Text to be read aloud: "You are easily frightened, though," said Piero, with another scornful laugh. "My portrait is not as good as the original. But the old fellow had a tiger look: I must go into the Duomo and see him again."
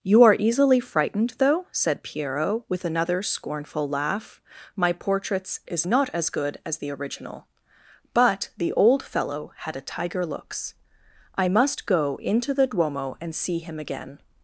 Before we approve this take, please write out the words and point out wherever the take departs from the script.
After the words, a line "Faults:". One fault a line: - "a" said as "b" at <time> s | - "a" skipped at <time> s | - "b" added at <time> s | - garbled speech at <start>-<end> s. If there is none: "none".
"You are easily frightened, though," said Piero, with another scornful laugh. "My portraits is not as good as the original. But the old fellow had a tiger looks: I must go into the Duomo and see him again."
Faults:
- "portrait" said as "portraits" at 4.9 s
- "look" said as "looks" at 10.2 s